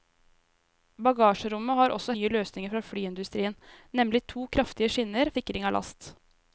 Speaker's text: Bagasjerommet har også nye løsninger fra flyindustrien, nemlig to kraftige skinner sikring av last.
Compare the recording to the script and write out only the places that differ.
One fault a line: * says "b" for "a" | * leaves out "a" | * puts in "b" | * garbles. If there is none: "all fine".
all fine